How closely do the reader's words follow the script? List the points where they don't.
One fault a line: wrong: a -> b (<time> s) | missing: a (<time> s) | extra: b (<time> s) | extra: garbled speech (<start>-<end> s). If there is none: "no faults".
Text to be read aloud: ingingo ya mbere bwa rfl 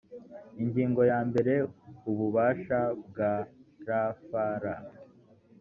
extra: ububasha (2.1 s)